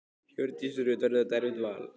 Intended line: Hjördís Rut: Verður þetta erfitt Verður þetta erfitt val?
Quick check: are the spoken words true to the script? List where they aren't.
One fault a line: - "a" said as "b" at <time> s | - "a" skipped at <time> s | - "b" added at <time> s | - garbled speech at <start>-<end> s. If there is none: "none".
- "Verður þetta erfitt" skipped at 1.6 s